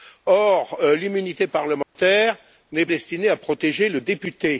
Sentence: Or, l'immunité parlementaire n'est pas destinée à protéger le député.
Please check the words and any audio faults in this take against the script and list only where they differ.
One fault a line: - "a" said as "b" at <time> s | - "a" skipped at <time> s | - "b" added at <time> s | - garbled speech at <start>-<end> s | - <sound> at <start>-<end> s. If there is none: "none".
- dropout at 1.8-2.0 s
- "pas" skipped at 2.9 s